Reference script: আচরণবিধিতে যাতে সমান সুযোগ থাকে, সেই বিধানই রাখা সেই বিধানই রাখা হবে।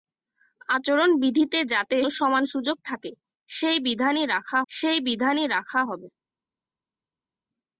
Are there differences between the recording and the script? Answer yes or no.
no